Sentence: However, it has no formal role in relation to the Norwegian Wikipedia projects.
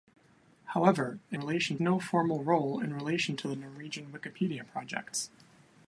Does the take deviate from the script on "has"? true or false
true